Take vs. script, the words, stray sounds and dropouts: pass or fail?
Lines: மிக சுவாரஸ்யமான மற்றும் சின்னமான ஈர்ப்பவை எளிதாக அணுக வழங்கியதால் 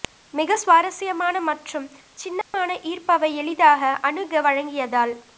fail